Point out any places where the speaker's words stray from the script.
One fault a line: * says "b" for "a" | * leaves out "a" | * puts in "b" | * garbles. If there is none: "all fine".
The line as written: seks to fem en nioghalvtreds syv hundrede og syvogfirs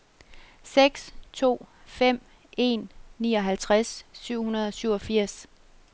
all fine